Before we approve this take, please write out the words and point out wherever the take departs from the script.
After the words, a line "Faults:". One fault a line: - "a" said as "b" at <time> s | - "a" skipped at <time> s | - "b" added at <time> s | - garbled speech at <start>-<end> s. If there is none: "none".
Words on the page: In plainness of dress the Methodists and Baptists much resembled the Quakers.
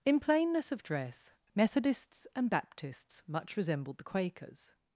In plainness of dress Methodists and Baptists much resembled the Quakers.
Faults:
- "the" skipped at 1.3 s